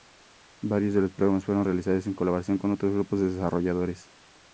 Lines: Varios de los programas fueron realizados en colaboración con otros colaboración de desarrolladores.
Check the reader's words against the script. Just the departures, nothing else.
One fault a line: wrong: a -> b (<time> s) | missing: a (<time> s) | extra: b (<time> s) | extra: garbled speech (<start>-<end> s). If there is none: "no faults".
wrong: colaboración -> grupos (2.9 s)